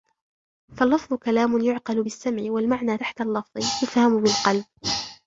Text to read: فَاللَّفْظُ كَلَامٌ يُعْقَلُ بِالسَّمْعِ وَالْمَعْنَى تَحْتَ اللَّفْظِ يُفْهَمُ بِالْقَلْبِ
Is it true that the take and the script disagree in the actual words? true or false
false